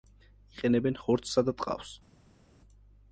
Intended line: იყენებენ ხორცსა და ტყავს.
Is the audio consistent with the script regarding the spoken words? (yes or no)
yes